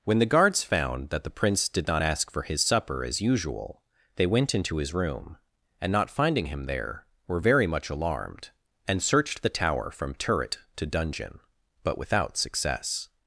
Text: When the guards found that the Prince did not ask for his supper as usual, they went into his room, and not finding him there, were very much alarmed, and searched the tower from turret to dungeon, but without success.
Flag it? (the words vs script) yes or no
no